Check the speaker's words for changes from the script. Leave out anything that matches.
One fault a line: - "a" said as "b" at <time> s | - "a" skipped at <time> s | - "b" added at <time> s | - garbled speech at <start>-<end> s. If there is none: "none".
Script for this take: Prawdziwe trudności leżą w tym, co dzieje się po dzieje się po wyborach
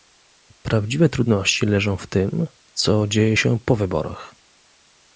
- "dzieje się po" skipped at 3.8 s